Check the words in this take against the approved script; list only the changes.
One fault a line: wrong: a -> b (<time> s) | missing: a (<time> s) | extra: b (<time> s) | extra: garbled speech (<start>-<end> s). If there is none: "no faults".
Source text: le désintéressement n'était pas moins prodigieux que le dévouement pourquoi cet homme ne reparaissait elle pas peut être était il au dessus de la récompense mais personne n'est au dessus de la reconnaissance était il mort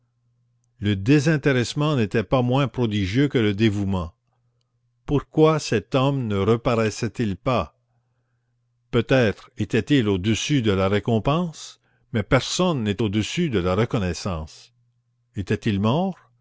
wrong: elle -> il (7.2 s)